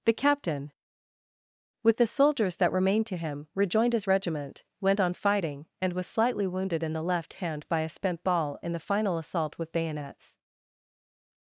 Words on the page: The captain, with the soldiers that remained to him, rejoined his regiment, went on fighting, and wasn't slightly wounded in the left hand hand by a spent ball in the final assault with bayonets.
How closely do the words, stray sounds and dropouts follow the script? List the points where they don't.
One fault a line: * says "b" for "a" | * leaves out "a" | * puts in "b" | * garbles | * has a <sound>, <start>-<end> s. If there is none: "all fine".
* says "was" for "wasn't"
* leaves out "hand"